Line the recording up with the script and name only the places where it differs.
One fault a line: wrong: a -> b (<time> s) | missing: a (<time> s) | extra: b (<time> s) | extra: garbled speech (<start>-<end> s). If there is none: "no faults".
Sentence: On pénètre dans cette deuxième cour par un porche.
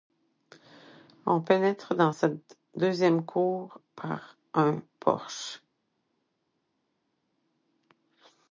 no faults